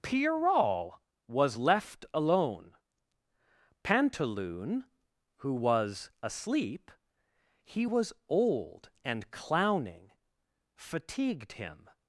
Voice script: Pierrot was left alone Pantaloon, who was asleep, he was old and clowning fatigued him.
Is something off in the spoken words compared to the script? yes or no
no